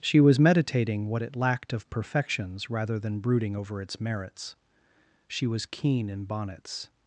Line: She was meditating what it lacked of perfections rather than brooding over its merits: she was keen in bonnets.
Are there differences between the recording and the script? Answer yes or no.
no